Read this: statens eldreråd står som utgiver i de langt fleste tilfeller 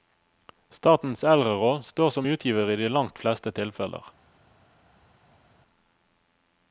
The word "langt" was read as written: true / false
true